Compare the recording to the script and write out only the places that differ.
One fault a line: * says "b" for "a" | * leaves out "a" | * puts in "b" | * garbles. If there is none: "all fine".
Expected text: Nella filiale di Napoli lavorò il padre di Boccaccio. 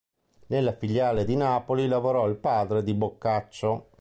all fine